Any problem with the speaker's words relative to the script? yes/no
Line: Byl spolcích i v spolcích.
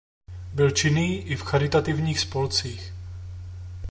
yes